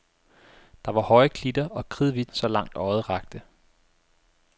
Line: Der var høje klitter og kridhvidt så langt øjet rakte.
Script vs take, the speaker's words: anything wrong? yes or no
no